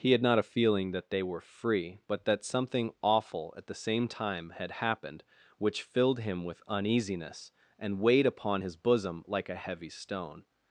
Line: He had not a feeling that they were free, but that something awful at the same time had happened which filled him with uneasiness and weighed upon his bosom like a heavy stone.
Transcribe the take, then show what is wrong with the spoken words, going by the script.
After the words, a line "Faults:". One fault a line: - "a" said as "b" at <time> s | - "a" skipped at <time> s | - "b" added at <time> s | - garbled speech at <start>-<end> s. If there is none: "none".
He had not a feeling that they were free, but that something awful at the same time had happened which filled him with uneasiness and weighed upon his bosom like a heavy stone.
Faults:
none